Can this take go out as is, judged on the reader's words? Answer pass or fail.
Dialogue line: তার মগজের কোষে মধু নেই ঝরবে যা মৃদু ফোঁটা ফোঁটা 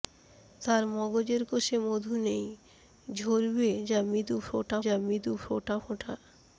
fail